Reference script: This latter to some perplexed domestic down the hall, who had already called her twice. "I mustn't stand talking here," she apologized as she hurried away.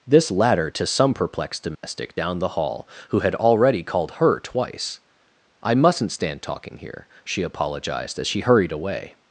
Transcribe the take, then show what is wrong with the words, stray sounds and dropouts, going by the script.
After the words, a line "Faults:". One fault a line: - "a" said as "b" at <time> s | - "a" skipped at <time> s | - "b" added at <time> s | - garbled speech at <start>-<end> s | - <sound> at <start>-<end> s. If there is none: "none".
This latter to some perplexed domestic down the hall, who had already called her twice. "I mustn't stand talking here," she apologized as she hurried away.
Faults:
- dropout at 1.7-1.8 s